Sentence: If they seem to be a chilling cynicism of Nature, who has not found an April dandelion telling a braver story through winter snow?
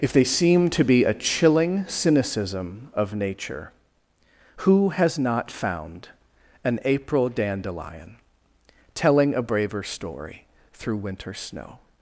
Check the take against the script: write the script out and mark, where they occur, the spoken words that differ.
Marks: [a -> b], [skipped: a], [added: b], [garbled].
If they seem to be a chilling cynicism of Nature, who has not found an April dandelion telling a braver story through winter snow?